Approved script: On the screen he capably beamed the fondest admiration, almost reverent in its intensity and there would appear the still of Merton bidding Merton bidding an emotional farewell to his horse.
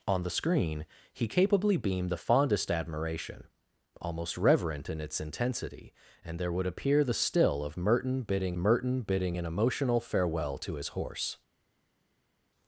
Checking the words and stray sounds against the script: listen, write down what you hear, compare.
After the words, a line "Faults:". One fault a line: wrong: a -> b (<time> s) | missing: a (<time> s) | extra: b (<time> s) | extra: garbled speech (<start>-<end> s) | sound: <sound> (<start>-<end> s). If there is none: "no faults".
On the screen he capably beamed the fondest admiration, almost reverent in its intensity and there would appear the still of Merton bidding Merton bidding an emotional farewell to his horse.
Faults:
no faults